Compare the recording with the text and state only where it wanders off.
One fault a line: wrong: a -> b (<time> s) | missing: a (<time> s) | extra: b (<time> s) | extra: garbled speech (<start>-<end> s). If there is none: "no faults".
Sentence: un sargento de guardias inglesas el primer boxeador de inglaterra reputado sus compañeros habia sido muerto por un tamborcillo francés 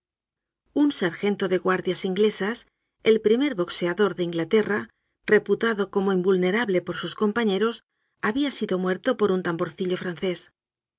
extra: como invulnerable por (5.9 s)